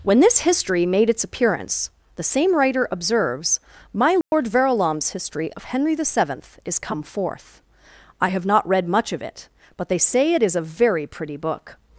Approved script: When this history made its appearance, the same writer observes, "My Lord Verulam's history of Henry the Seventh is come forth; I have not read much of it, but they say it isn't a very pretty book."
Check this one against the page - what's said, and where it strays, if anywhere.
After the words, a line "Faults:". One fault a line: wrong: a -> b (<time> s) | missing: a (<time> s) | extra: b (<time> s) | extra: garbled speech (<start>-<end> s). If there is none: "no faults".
When this history made its appearance, the same writer observes, "My Lord Verulam's history of Henry the Seventh is come forth; I have not read much of it, but they say it is a very pretty book."
Faults:
wrong: isn't -> is (10.4 s)